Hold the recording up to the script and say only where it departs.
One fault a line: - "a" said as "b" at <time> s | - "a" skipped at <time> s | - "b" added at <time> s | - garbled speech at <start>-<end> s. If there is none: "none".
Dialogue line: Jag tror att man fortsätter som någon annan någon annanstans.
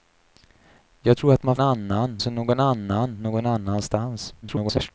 - "fortsätter" said as "annan" at 1.6 s
- garbled speech at 4.4-4.9 s